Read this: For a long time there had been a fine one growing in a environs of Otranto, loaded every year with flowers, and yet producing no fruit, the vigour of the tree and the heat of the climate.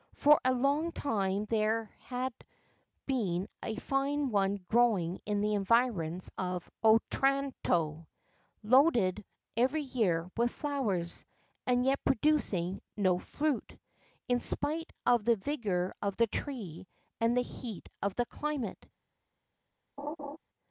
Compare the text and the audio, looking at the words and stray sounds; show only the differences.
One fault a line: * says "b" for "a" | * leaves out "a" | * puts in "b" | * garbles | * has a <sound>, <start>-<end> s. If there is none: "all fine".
* says "the" for "a"
* puts in "in spite of"
* has a laugh, 20.0-20.4 s